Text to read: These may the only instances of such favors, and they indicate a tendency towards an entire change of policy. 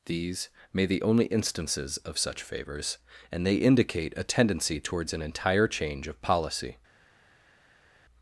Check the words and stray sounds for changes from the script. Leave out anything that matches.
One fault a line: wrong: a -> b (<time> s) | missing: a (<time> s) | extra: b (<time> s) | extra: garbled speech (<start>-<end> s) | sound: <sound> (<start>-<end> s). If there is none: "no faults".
no faults